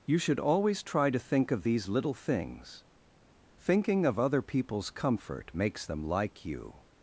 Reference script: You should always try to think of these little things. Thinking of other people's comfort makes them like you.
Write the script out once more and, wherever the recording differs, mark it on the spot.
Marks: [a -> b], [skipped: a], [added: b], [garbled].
You should always try to think of these little things. Thinking of other people's comfort makes them like you.